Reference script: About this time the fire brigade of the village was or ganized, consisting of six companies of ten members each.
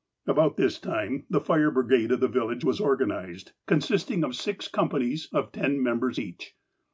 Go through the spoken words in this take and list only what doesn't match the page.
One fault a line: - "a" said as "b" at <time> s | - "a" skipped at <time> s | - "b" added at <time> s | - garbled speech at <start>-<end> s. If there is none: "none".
none